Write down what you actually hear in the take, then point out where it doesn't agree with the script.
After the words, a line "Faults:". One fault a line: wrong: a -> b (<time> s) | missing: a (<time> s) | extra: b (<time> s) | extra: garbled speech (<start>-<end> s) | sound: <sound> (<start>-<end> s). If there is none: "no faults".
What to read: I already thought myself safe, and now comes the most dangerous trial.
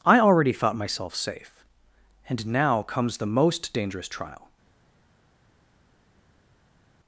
I already thought myself safe, and now comes the most dangerous trial.
Faults:
no faults